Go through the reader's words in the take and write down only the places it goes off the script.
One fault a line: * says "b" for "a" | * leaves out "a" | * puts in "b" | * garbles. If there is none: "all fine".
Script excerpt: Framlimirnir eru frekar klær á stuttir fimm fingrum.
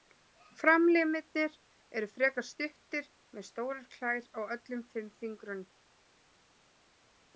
* puts in "stuttir með stórar"
* says "öllum" for "stuttir"